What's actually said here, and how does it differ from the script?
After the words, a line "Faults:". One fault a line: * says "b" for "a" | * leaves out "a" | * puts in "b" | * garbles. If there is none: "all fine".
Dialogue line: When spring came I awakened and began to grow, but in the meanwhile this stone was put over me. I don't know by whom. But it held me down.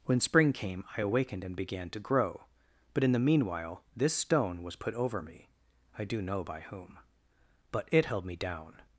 When spring came I awakened and began to grow, but in the meanwhile this stone was put over me. I do know by whom. But it held me down.
Faults:
* says "do" for "don't"